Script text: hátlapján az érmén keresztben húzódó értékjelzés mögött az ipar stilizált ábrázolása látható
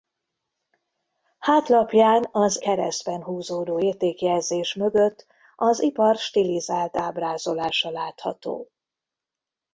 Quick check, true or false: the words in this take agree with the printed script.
false